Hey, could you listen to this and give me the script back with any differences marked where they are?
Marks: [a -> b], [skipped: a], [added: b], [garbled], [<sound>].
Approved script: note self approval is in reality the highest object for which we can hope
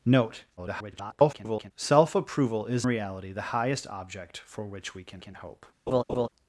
note [garbled] self approval is [skipped: in] reality the highest object for which we can [added: can] hope [laugh]